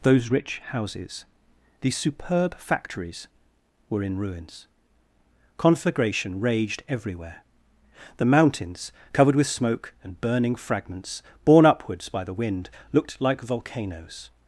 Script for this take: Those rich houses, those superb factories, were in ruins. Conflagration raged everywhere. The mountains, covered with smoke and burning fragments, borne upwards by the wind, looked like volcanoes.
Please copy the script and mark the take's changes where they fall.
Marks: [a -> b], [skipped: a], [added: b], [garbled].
Those rich houses, [those -> these] superb factories, were in ruins. Conflagration raged everywhere. The mountains, covered with smoke and burning fragments, borne upwards by the wind, looked like volcanoes.